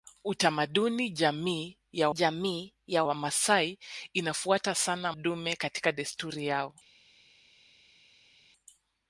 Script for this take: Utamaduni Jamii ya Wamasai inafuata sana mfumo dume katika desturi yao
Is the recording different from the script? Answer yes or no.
yes